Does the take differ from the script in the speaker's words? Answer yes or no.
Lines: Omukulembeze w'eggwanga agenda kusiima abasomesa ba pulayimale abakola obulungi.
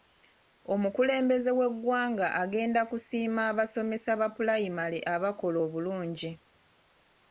no